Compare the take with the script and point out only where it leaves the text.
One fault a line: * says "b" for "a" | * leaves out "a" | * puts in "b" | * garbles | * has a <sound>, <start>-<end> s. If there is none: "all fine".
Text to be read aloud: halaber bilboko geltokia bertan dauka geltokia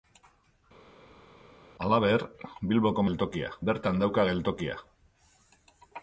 all fine